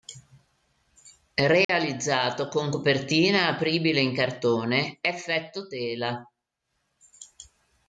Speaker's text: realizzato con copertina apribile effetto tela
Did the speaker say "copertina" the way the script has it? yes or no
yes